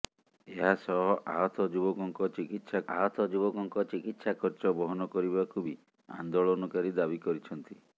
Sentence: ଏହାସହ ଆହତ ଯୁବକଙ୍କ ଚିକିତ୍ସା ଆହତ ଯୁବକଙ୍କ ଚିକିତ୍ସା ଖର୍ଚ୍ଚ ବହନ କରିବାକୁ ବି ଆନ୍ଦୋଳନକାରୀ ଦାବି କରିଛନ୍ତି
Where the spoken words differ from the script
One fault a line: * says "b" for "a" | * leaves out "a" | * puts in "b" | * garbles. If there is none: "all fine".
all fine